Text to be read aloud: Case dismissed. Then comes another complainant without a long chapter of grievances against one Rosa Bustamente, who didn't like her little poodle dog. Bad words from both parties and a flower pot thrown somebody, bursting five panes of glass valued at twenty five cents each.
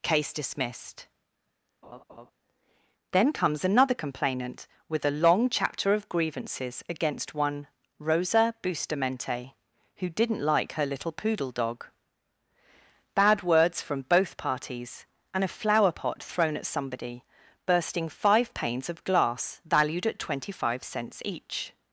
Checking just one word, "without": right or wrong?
wrong